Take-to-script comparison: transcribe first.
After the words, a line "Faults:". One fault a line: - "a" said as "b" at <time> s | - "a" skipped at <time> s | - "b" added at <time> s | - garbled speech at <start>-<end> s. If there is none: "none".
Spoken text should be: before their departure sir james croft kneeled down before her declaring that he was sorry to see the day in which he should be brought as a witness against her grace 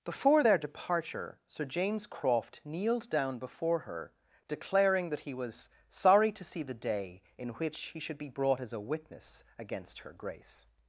before their departure sir james croft kneeled down before her declaring that he was sorry to see the day in which he should be brought as a witness against her grace
Faults:
none